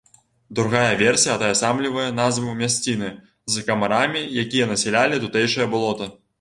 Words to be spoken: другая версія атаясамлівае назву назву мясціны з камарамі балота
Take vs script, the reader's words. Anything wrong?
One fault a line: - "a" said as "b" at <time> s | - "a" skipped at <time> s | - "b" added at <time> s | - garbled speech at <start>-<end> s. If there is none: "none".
- "назву" skipped at 2.5 s
- "якія насялялі тутэйшае" added at 4.4 s